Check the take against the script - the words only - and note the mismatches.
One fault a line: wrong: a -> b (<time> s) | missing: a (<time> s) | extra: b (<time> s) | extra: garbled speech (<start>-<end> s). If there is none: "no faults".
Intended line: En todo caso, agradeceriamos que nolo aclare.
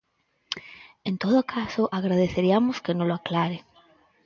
no faults